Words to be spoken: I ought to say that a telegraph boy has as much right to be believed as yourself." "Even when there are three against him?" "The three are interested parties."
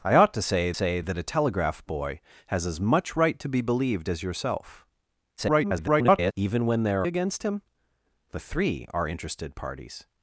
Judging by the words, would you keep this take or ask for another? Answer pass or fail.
fail